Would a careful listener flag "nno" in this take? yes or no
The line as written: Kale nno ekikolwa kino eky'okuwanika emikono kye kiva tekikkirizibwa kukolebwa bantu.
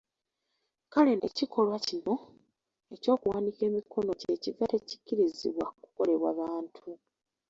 yes